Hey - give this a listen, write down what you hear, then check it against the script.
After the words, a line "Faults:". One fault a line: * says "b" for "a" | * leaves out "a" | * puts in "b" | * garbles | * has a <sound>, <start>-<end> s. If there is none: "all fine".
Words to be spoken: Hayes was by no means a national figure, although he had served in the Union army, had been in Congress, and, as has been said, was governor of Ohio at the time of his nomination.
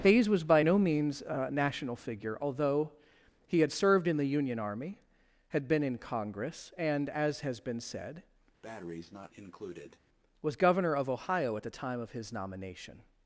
Hayes was by no means a national figure, although he had served in the Union army, had been in Congress, and, as has been said, was governor of Ohio at the time of his nomination.
Faults:
* has a breath, 8.6-10.0 s